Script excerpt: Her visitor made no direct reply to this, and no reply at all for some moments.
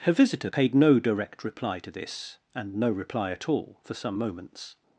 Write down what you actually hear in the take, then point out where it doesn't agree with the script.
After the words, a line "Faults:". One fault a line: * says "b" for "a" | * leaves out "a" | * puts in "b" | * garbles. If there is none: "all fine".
Her visitor paid no direct reply to this, and no reply at all for some moments.
Faults:
* says "paid" for "made"